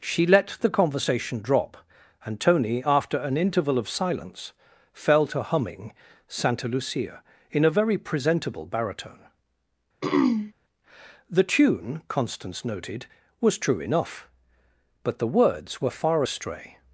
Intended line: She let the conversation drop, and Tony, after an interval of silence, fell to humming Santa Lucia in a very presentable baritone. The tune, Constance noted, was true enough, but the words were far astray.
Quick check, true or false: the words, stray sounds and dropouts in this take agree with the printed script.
false